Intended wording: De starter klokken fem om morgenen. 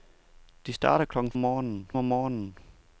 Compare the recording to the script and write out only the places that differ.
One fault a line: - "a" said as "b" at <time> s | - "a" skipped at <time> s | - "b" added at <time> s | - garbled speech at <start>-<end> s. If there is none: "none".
- "fem" said as "morgenen" at 1.4 s